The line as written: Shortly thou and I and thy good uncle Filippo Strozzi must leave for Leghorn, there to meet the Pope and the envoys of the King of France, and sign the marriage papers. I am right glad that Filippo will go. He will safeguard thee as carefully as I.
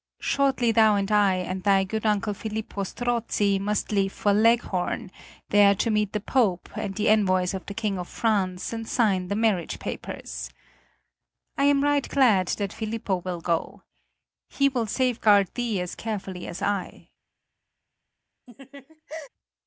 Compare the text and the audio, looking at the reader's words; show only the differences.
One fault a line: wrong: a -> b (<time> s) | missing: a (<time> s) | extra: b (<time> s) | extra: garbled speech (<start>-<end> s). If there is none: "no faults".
no faults